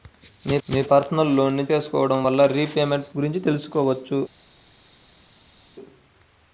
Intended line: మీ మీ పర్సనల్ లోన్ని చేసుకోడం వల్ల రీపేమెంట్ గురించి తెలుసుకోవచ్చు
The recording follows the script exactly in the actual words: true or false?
true